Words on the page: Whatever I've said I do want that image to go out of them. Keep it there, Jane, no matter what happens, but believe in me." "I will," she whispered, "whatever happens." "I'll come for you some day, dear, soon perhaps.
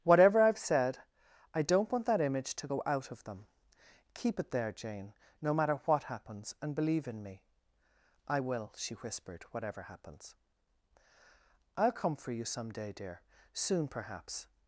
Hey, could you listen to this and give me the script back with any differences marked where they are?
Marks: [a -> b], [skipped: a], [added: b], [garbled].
Whatever I've said I [do -> don't] want that image to go out of them. Keep it there, Jane, no matter what happens, [but -> and] believe in me." "I will," she whispered, "whatever happens." "I'll come for you some day, dear, soon perhaps.